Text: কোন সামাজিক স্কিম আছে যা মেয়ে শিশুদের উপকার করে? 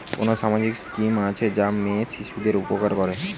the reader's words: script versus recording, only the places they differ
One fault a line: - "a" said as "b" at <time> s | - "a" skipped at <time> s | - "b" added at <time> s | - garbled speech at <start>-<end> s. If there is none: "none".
none